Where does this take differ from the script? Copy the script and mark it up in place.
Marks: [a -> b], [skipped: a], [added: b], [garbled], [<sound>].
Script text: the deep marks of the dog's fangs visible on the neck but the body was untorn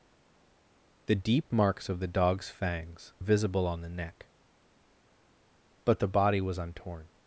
the deep marks of the dog's fangs visible on the neck but the body was untorn